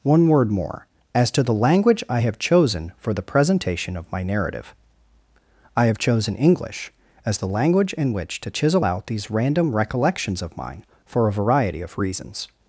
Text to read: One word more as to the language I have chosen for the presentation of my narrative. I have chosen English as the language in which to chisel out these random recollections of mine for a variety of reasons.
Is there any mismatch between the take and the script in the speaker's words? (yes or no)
no